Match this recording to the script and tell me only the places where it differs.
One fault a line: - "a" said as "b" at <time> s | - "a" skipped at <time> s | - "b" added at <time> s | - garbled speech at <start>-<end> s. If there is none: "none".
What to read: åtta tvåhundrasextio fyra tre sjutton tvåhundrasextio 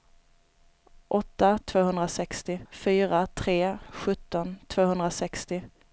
none